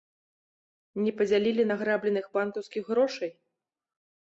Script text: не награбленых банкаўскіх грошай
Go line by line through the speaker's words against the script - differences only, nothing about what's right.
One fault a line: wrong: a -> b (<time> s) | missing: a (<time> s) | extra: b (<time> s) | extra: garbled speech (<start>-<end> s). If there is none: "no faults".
extra: падзялілі (1.2 s)